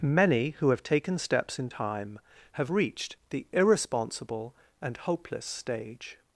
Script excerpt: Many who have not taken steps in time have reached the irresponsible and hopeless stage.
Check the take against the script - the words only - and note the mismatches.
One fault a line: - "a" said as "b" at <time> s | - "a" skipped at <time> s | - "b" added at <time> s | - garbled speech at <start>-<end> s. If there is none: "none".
- "not" skipped at 0.8 s